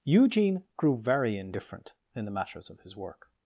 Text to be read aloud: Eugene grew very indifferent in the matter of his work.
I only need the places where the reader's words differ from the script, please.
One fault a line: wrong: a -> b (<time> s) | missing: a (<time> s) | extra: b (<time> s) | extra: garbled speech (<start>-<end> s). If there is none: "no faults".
wrong: matter -> matters (2.3 s)